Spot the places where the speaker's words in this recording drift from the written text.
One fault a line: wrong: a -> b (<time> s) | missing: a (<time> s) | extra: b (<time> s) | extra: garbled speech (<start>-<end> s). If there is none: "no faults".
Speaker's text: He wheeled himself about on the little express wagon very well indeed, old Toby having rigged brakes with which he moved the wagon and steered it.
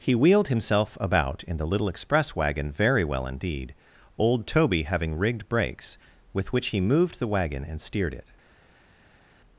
wrong: on -> in (1.4 s)